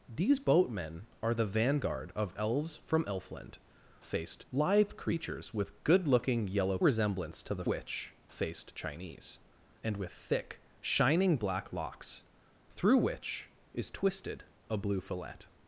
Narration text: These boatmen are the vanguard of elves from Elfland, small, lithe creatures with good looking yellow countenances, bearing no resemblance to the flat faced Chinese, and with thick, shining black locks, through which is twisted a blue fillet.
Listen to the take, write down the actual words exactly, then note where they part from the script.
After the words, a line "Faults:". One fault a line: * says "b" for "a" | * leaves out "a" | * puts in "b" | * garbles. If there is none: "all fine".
These boatmen are the vanguard of elves from Elfland, faced, lithe creatures with good looking yellow resemblance to the which faced Chinese, and with thick, shining black locks, through which is twisted a blue fillet.
Faults:
* says "faced" for "small"
* leaves out "countenances bearing no"
* says "which" for "flat"